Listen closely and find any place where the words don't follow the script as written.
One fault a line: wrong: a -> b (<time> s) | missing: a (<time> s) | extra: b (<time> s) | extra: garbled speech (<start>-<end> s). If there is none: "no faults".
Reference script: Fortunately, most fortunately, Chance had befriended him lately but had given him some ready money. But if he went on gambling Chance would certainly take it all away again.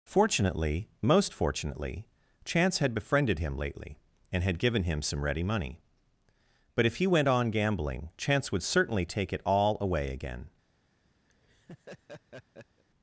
wrong: but -> and (4.3 s)